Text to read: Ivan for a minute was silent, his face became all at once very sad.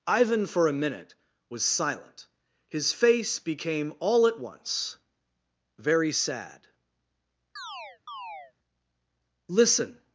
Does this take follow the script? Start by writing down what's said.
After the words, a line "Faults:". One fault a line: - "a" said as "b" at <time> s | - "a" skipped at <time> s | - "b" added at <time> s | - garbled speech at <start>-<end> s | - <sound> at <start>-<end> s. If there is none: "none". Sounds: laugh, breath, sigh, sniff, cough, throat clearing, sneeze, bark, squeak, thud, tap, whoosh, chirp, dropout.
Ivan for a minute was silent, his face became all at once very sad. "Listen
Faults:
- chirp at 7.6-8.5 s
- "Listen" added at 9.5 s